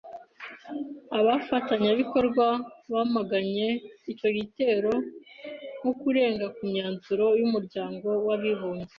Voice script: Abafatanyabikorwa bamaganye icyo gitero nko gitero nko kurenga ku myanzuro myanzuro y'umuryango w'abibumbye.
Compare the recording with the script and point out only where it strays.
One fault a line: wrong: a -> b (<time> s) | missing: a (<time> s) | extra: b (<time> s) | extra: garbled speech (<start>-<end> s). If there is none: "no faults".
missing: gitero nko (5.9 s)
missing: myanzuro (7.3 s)